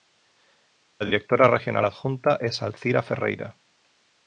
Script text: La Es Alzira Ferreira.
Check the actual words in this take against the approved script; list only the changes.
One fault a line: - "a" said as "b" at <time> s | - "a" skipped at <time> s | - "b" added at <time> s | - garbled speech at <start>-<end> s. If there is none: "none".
- "Directora Regional Adjunta" added at 1.1 s